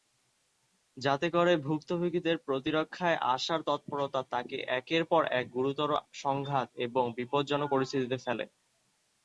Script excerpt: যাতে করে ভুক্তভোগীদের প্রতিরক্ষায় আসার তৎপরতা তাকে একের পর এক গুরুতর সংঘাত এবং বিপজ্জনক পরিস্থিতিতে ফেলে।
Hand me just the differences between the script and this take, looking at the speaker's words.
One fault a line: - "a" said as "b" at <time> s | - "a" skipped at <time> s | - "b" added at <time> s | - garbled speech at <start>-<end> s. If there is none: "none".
none